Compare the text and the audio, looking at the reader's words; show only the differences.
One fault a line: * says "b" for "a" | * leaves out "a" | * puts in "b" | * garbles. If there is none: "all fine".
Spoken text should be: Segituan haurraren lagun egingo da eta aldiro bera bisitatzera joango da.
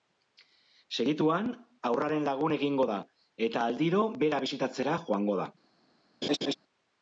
all fine